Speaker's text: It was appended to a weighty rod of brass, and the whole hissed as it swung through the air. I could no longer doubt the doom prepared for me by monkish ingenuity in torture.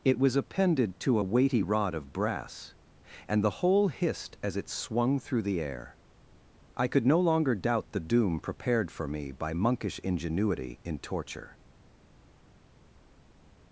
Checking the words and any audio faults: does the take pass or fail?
pass